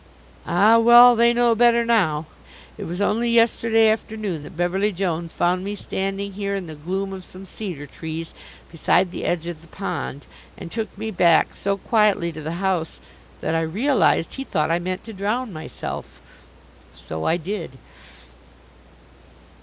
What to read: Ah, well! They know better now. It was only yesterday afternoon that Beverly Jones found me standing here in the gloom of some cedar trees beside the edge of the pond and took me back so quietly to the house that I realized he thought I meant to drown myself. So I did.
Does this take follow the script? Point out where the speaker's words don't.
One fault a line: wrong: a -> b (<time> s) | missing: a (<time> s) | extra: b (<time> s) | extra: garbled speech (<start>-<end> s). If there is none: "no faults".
no faults